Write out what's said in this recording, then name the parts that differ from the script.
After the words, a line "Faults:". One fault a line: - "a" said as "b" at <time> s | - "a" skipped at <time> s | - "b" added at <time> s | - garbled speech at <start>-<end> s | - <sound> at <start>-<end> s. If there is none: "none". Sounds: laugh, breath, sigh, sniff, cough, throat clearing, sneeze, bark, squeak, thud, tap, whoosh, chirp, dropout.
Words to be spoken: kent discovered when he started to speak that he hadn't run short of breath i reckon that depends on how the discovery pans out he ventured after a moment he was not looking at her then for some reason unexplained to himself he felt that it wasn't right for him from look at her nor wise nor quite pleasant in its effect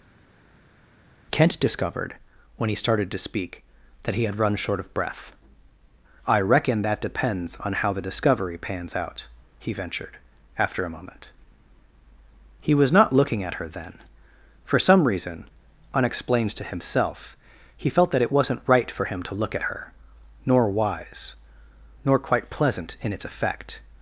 kent discovered when he started to speak that he had run short of breath i reckon that depends on how the discovery pans out he ventured after a moment he was not looking at her then for some reason unexplained to himself he felt that it wasn't right for him to look at her nor wise nor quite pleasant in its effect
Faults:
- "hadn't" said as "had" at 4.2 s
- "from" said as "to" at 19.2 s